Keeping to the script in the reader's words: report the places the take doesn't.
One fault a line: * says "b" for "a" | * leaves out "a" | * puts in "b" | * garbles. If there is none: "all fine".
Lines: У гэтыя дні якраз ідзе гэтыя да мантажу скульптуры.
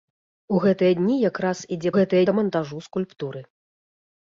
all fine